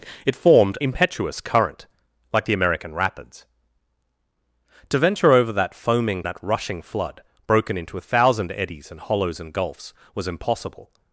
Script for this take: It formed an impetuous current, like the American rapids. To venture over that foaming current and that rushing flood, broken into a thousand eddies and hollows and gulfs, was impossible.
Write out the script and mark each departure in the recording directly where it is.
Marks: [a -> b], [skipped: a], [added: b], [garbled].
It formed [skipped: an] impetuous current, like the American rapids. To venture over that foaming [skipped: current and] that rushing flood, broken into a thousand eddies and hollows and gulfs, was impossible.